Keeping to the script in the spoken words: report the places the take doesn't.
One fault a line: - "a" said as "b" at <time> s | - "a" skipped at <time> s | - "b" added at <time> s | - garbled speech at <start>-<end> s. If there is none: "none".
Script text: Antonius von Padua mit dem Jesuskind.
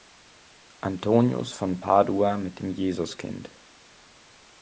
none